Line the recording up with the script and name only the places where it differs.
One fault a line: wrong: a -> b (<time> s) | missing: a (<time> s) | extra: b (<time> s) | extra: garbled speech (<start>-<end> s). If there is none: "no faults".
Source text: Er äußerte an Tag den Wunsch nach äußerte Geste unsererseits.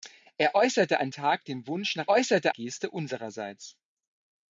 no faults